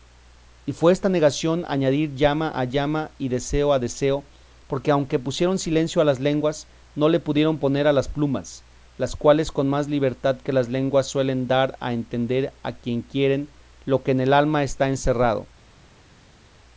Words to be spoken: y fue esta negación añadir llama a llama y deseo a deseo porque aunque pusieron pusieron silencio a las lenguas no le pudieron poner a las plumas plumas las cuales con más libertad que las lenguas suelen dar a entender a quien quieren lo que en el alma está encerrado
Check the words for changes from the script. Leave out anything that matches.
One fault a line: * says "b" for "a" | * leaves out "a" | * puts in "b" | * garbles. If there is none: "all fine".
* leaves out "pusieron"
* leaves out "plumas"